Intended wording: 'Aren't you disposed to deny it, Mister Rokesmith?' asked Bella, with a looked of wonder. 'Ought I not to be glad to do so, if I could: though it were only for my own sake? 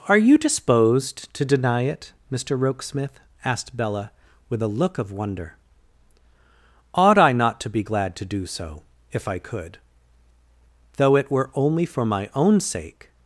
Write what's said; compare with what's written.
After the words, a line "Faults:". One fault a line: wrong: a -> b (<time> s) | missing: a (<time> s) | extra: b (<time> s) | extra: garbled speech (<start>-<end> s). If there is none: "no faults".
'Are you disposed to deny it, Mister Rokesmith?' asked Bella, with a look of wonder. 'Ought I not to be glad to do so, if I could: though it were only for my own sake?
Faults:
wrong: Aren't -> Are (0.1 s)
wrong: looked -> look (4.7 s)